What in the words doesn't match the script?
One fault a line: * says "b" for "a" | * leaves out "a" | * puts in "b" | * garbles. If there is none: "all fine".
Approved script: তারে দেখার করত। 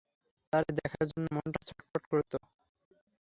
* puts in "জন্য মনটা ছটফট"